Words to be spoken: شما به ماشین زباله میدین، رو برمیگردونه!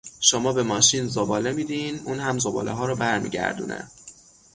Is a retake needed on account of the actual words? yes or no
yes